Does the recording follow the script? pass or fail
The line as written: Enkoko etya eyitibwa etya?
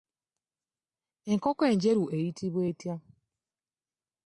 fail